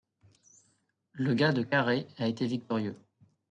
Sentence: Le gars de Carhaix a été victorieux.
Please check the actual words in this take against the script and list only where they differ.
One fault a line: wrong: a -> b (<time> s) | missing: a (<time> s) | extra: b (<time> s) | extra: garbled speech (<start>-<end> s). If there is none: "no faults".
no faults